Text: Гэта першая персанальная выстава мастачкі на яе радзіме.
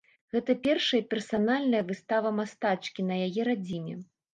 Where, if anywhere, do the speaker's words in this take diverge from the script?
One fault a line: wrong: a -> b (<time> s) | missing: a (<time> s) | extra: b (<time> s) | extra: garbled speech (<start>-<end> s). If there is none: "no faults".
no faults